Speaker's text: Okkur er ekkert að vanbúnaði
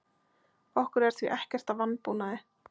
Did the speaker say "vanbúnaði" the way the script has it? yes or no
yes